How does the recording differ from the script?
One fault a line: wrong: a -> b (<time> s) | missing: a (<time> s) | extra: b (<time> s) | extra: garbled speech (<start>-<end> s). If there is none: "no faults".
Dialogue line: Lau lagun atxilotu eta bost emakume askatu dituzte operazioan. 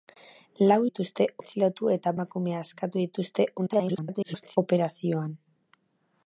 wrong: lagun -> dituzte (0.8 s)
missing: bost (2.1 s)
extra: garbled speech (3.6-4.6 s)